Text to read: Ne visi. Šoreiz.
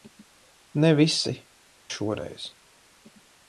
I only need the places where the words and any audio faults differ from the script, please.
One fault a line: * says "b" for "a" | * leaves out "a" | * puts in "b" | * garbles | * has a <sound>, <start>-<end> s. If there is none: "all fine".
all fine